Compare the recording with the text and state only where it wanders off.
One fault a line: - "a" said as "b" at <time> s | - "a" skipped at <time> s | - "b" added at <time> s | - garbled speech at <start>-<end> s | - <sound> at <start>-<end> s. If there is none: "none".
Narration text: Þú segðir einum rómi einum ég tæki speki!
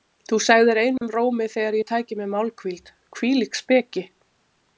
- dropout at 1.0-1.0 s
- "einum" said as "þegar" at 1.6 s
- "mér málhvíld Hvílík" added at 2.2 s